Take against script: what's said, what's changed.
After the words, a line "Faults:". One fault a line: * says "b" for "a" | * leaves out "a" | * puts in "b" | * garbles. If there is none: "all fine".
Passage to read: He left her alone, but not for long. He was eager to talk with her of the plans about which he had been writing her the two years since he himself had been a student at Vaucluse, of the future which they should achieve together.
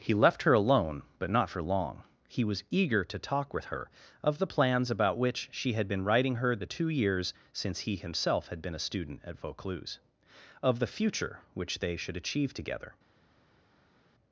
He left her alone, but not for long. He was eager to talk with her of the plans about which she had been writing her the two years since he himself had been a student at Vaucluse, of the future which they should achieve together.
Faults:
* says "she" for "he"